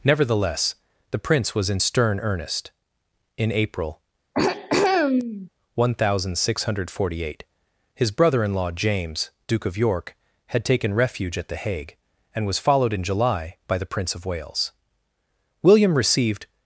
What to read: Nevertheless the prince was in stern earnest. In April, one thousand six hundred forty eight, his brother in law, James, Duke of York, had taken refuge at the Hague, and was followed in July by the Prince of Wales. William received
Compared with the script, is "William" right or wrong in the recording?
right